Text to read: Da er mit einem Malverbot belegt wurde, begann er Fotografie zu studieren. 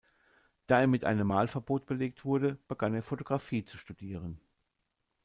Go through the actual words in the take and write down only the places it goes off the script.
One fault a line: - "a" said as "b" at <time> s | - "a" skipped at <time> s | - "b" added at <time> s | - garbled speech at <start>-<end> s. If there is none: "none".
none